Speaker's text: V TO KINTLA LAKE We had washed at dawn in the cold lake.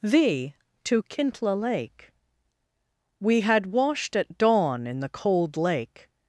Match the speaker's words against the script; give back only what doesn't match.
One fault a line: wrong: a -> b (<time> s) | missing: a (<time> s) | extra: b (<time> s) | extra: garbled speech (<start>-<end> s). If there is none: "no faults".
no faults